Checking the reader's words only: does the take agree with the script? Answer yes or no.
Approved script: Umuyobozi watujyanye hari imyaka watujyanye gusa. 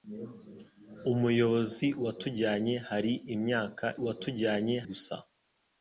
yes